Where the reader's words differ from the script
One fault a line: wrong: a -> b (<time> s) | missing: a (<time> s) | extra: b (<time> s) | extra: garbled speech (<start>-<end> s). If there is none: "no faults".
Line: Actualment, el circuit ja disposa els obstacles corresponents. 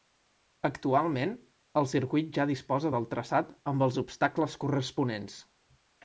extra: del traçat amb (2.9 s)